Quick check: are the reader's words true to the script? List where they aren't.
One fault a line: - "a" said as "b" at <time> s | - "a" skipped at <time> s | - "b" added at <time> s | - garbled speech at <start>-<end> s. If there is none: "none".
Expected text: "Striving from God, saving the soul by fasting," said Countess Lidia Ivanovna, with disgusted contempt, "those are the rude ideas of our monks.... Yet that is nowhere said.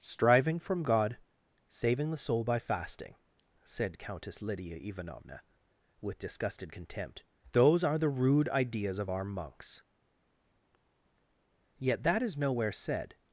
none